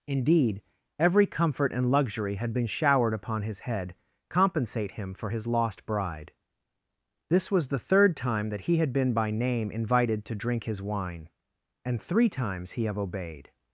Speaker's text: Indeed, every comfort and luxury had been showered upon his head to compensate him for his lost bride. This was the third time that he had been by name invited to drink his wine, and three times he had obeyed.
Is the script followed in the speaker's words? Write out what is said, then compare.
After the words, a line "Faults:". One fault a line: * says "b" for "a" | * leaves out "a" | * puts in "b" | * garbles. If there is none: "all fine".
Indeed, every comfort and luxury had been showered upon his head compensate him for his lost bride. This was the third time that he had been by name invited to drink his wine, and three times he have obeyed.
Faults:
* leaves out "to"
* says "have" for "had"